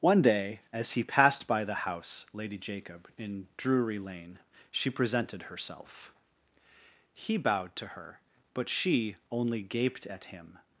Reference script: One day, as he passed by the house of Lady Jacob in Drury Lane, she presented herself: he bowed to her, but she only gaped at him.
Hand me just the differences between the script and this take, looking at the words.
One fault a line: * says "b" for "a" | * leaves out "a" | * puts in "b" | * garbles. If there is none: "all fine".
* leaves out "of"